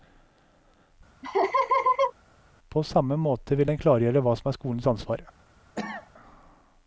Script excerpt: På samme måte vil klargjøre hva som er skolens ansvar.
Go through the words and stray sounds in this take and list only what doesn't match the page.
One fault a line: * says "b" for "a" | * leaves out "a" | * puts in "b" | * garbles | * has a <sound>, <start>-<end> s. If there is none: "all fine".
* has a laugh, 1.2-2.1 s
* puts in "den"
* has a cough, 5.8-6.1 s